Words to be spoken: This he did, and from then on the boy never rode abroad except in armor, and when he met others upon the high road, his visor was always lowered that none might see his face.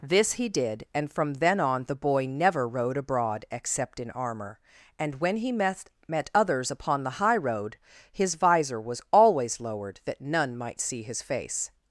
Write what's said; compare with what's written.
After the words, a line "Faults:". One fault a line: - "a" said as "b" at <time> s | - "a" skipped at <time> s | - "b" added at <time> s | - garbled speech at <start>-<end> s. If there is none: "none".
This he did, and from then on the boy never rode abroad except in armor, and when he met met others upon the high road, his visor was always lowered that none might see his face.
Faults:
- "met" added at 6.1 s